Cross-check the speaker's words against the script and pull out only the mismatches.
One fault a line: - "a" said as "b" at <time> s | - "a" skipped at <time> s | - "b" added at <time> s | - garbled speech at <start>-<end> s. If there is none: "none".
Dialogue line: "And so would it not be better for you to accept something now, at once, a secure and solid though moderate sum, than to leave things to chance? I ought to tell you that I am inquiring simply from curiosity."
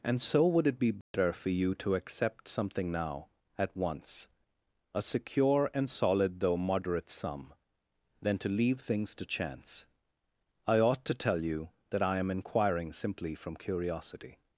- "not" skipped at 0.8 s